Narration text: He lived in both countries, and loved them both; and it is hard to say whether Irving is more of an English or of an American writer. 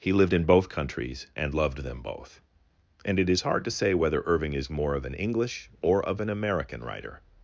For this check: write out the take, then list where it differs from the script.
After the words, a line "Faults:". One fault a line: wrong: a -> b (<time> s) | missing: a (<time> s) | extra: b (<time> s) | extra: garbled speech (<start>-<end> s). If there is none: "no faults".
He lived in both countries, and loved them both; and it is hard to say whether Irving is more of an English or of an American writer.
Faults:
no faults